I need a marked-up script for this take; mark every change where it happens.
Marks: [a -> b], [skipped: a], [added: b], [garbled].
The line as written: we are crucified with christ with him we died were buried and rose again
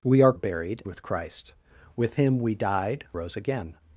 we are [crucified -> buried] with christ with him we died [skipped: were buried and] rose again